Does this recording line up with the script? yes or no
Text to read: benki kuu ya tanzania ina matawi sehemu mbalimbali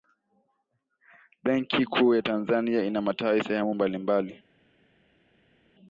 yes